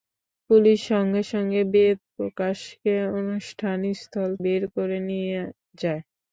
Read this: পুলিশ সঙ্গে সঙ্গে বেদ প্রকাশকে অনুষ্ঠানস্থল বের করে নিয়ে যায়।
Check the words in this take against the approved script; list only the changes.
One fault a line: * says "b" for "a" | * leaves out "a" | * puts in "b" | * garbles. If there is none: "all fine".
all fine